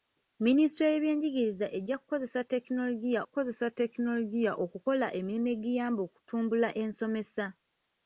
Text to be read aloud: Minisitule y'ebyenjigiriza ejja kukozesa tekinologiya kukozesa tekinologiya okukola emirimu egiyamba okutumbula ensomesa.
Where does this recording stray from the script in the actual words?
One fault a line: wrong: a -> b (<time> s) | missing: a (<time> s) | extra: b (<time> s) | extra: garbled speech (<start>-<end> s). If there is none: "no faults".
no faults